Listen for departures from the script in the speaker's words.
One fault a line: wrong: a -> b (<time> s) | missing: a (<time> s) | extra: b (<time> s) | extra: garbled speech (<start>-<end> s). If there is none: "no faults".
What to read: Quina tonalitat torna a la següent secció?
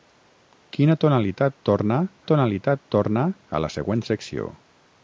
extra: tonalitat torna (2.3 s)